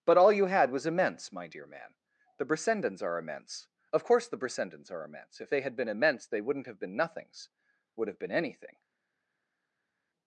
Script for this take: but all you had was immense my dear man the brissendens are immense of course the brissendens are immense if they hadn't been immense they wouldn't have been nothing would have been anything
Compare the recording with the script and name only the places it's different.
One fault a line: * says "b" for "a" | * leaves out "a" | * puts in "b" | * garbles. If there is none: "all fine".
* says "had" for "hadn't"
* says "nothings" for "nothing"